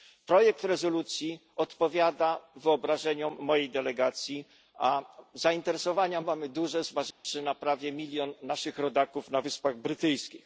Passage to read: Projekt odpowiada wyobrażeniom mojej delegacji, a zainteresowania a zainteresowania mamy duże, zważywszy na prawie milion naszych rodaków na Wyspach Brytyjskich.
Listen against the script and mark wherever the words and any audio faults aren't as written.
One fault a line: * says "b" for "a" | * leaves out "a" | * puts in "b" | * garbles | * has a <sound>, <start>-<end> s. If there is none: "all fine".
* puts in "rezolucji"
* leaves out "a zainteresowania"
* has a dropout, 7.1-7.2 s